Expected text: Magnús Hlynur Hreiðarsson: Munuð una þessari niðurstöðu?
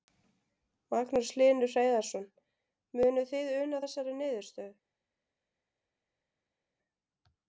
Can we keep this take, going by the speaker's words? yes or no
no